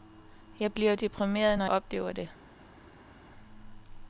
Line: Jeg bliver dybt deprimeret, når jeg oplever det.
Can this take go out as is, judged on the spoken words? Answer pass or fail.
fail